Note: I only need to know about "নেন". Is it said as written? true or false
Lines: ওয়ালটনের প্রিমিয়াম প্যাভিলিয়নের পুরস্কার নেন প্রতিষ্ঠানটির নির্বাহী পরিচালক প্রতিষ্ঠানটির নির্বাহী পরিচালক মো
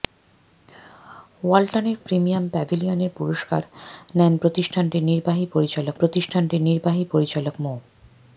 true